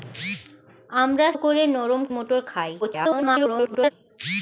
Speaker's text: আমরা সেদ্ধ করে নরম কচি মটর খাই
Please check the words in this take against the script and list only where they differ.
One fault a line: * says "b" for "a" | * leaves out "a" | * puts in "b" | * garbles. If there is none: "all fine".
* leaves out "সেদ্ধ"
* leaves out "কচি"
* garbles